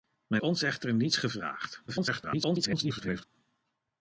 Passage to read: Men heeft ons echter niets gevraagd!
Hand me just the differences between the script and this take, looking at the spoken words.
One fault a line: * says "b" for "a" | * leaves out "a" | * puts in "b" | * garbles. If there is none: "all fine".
* leaves out "heeft"
* garbles